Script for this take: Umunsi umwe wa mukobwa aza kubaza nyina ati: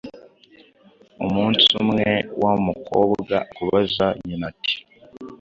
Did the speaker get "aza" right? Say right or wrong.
wrong